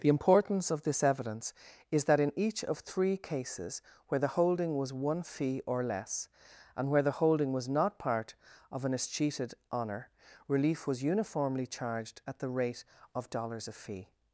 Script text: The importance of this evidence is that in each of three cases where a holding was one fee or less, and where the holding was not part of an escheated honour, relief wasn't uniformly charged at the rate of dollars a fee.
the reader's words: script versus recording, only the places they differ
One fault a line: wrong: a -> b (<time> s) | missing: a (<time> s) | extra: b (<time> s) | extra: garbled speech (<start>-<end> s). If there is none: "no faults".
wrong: a -> the (4.2 s)
wrong: wasn't -> was (10.9 s)